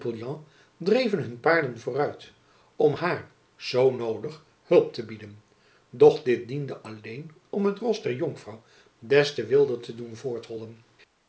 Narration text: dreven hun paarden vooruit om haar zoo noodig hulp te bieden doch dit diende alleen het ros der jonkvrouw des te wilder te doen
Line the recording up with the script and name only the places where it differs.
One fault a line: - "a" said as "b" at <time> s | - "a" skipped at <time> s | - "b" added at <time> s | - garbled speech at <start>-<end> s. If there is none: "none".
- "om" added at 7.5 s